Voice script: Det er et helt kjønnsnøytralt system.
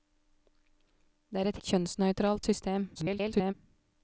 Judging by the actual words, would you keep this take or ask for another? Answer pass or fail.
fail